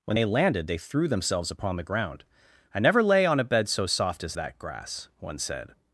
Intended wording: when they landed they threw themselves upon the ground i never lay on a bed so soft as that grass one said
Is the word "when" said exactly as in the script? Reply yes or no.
yes